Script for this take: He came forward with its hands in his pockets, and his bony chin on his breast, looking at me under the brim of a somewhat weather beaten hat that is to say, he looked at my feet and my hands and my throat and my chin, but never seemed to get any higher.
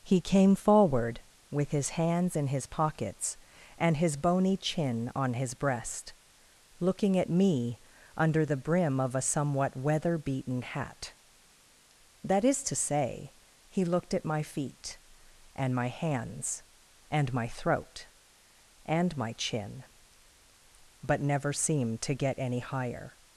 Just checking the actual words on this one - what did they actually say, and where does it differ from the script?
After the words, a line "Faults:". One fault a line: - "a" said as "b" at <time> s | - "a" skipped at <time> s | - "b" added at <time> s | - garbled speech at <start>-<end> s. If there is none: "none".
He came forward with his hands in his pockets, and his bony chin on his breast, looking at me under the brim of a somewhat weather beaten hat that is to say, he looked at my feet and my hands and my throat and my chin, but never seemed to get any higher.
Faults:
- "its" said as "his" at 1.7 s